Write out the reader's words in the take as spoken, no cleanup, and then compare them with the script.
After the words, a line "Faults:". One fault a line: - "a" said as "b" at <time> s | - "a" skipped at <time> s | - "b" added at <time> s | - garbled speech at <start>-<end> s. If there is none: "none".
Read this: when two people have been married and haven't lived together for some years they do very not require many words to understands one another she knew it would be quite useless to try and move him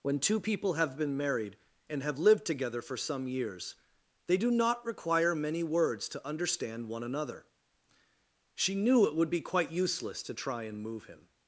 when two people have been married and have lived together for some years they do not require many words to understand one another she knew it would be quite useless to try and move him
Faults:
- "haven't" said as "have" at 2.0 s
- "very" skipped at 4.5 s
- "understands" said as "understand" at 6.2 s